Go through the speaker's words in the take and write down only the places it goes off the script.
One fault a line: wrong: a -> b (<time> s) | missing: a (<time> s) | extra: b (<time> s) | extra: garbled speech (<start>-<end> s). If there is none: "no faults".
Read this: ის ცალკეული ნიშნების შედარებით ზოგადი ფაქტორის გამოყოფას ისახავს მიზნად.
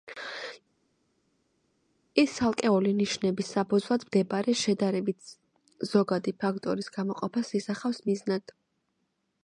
extra: საფუძვლად მდებარე (3.5 s)